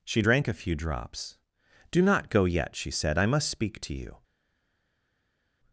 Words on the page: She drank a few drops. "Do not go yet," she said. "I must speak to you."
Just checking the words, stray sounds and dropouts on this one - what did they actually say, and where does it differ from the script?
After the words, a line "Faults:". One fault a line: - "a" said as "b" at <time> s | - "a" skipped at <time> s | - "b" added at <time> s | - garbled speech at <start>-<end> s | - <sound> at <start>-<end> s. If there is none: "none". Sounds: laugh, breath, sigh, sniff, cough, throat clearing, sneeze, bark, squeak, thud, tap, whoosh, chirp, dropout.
She drank a few drops. "Do not go yet," she said. "I must speak to you."
Faults:
none